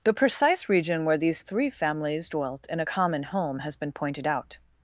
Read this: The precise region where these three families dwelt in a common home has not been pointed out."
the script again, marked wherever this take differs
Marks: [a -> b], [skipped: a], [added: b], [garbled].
The precise region where these three families dwelt in a common home has [skipped: not] been pointed out."